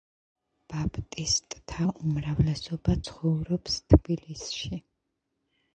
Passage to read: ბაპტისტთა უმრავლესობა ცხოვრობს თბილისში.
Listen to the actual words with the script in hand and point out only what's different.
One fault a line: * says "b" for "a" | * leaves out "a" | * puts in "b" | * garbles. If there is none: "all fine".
all fine